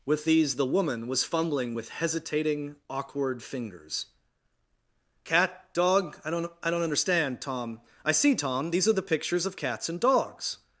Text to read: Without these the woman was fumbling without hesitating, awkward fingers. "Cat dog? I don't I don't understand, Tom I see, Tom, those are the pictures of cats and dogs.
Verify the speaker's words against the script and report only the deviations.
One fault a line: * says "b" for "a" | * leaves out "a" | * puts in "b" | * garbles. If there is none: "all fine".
* says "With" for "Without"
* says "with" for "without"
* says "these" for "those"